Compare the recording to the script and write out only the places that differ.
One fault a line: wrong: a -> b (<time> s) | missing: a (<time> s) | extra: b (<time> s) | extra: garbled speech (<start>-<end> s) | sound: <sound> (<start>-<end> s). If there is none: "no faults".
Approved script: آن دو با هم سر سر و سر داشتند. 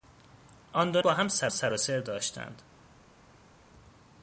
no faults